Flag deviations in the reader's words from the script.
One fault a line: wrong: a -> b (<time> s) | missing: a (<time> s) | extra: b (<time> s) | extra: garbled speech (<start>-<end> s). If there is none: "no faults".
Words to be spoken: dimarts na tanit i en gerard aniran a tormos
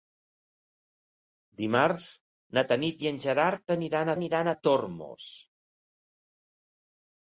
extra: aniran (4.2 s)